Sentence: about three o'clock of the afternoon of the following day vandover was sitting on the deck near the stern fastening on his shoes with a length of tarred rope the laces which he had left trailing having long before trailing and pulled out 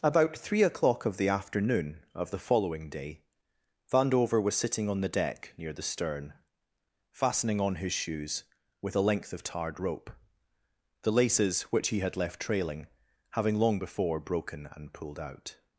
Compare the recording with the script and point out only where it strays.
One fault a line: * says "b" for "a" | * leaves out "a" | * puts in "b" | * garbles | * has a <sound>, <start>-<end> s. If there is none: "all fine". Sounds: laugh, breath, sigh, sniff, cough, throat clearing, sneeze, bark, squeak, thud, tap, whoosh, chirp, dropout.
* says "broken" for "trailing"